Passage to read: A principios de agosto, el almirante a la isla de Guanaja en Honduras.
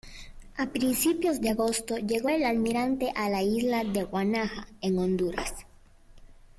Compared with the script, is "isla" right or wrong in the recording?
right